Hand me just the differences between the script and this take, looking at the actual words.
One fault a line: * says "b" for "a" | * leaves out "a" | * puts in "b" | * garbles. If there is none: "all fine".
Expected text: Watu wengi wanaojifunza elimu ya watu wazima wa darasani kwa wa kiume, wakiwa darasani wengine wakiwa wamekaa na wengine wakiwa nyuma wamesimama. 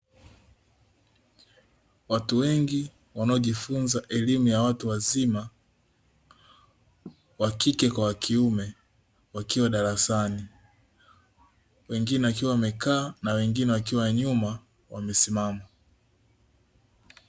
* says "kike" for "darasani"